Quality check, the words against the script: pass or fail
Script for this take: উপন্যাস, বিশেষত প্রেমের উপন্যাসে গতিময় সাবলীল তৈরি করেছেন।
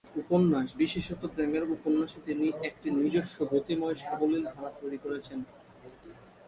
fail